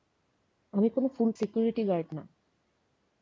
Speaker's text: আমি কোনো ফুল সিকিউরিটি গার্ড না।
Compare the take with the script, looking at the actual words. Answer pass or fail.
pass